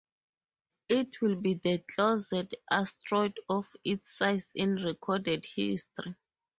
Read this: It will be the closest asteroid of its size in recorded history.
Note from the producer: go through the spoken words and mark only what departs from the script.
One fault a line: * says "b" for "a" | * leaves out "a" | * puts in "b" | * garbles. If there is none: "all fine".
all fine